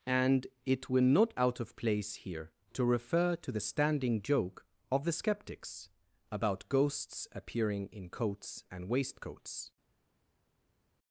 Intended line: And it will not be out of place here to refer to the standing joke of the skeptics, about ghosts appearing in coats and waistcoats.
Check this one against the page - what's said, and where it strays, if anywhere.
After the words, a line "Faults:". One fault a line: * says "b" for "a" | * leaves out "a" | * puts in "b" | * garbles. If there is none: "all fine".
And it will not out of place here to refer to the standing joke of the skeptics, about ghosts appearing in coats and waistcoats.
Faults:
* leaves out "be"